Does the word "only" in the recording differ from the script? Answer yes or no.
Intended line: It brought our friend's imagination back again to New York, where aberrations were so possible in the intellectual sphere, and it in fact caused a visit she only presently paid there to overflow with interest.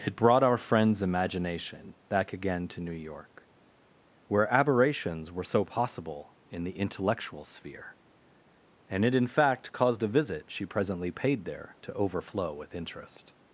yes